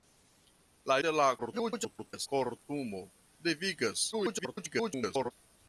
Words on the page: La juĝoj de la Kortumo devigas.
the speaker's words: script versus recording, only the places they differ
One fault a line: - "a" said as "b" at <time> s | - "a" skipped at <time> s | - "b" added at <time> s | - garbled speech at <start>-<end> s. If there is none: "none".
- "juĝoj" skipped at 0.9 s
- garbled speech at 1.4-2.3 s
- garbled speech at 4.1-5.3 s